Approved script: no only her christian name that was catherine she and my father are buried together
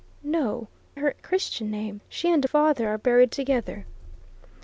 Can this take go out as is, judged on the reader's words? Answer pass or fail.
fail